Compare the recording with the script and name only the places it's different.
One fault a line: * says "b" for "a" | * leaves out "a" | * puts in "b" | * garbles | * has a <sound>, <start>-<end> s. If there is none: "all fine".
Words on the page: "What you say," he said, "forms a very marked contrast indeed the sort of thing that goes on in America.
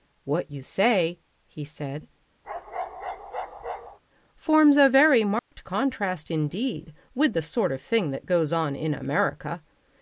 * has a bark, 2.4-4.0 s
* has a dropout, 5.4-5.5 s
* puts in "with"